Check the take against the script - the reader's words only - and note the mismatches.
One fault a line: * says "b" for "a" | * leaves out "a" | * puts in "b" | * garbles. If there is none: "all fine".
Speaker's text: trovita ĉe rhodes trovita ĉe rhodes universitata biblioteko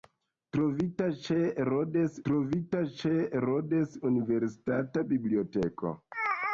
all fine